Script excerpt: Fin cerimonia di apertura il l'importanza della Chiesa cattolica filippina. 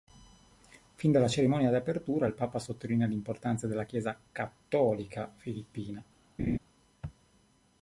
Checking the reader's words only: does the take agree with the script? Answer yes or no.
no